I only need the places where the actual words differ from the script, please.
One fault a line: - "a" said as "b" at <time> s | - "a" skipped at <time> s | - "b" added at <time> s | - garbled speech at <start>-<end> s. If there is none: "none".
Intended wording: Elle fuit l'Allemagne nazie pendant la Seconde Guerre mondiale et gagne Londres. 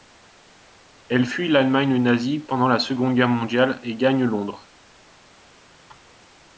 none